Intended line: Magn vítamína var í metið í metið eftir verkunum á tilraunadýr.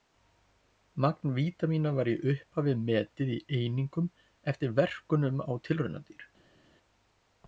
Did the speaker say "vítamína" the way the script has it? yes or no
yes